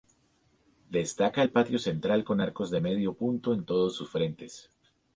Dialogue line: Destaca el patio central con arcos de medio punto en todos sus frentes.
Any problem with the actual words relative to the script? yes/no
no